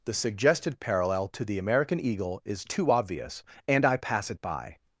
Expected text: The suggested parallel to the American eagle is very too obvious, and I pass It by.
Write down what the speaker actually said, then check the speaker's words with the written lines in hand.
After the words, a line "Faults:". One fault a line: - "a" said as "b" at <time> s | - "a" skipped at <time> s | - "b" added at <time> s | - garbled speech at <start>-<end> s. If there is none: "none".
The suggested parallel to the American eagle is too obvious, and I pass It by.
Faults:
- "very" skipped at 2.6 s